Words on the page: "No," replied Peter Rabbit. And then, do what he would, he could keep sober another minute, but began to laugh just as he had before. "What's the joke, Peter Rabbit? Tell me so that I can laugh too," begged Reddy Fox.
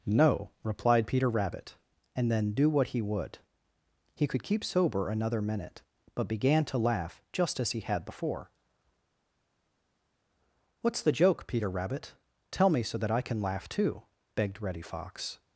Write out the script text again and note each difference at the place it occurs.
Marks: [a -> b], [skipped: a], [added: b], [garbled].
"No," replied Peter Rabbit. And then, do what he would, he could keep sober another minute, but began to laugh just as he had before. "What's the joke, Peter Rabbit? Tell me so that I can laugh too," begged Reddy Fox.